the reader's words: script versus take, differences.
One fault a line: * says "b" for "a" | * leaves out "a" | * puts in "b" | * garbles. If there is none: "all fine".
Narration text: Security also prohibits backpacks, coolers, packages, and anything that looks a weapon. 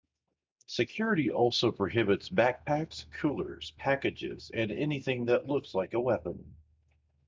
* puts in "like"